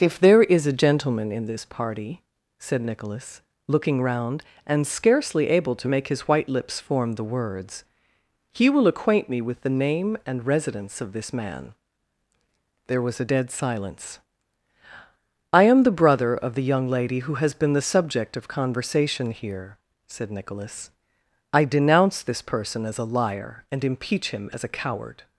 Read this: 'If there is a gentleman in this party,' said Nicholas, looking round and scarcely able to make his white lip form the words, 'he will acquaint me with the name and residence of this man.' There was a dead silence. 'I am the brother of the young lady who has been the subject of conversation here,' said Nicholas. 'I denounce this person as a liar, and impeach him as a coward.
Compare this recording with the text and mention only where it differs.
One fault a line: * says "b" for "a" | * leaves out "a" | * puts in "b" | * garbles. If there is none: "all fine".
* says "lips" for "lip"